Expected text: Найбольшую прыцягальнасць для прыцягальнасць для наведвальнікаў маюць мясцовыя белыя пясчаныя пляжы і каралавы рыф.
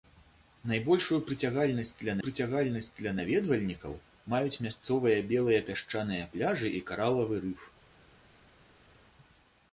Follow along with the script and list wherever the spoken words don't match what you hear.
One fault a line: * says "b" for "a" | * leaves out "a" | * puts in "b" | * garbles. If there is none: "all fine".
all fine